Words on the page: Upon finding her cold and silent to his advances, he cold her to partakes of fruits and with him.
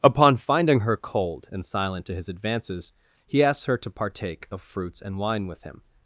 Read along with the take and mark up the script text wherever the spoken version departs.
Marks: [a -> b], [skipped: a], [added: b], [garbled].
Upon finding her cold and silent to his advances, he [cold -> asks] her to [partakes -> partake] of fruits and [added: wine] with him.